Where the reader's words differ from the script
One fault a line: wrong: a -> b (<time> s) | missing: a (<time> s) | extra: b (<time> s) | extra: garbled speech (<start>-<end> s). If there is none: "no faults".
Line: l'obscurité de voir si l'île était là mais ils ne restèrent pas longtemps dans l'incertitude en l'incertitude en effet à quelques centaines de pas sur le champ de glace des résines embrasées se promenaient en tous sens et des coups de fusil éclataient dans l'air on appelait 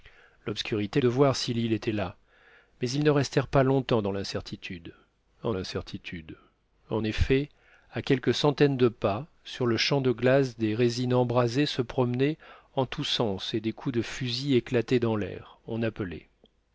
no faults